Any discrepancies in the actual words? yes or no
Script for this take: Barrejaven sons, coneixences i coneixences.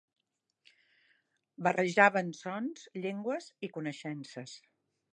yes